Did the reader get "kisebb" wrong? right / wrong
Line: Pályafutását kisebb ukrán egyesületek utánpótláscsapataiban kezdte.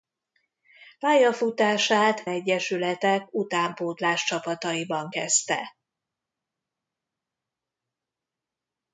wrong